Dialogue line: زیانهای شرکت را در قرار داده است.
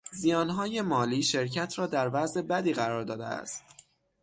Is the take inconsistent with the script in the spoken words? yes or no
yes